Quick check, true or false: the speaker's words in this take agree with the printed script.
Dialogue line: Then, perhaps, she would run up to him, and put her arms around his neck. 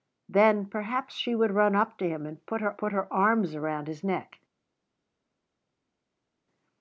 false